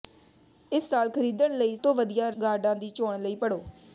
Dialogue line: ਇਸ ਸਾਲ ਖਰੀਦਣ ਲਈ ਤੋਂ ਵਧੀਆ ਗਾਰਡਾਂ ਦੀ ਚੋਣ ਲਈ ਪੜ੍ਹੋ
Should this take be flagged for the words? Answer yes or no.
no